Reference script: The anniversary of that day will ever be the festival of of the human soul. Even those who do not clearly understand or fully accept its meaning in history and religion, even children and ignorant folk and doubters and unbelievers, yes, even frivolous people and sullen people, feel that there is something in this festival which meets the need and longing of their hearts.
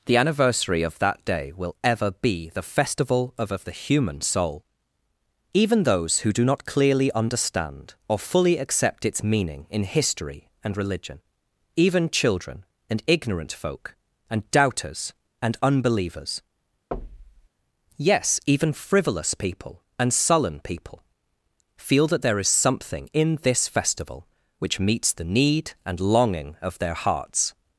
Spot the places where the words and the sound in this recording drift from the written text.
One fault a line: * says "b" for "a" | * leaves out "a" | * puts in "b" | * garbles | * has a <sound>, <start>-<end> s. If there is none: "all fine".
* has a thud, 16.9-17.5 s